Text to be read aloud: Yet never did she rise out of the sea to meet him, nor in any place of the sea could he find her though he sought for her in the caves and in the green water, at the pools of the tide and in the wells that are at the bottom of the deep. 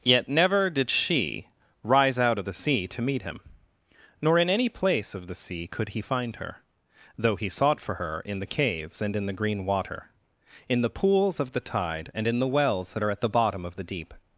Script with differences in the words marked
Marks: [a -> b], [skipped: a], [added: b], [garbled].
Yet never did she rise out of the sea to meet him, nor in any place of the sea could he find her though he sought for her in the caves and in the green water, [at -> in] the pools of the tide and in the wells that are at the bottom of the deep.